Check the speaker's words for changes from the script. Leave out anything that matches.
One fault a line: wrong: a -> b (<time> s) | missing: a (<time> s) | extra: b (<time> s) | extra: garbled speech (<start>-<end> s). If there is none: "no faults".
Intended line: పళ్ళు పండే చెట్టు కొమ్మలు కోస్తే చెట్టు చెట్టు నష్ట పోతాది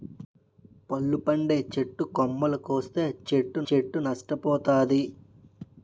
no faults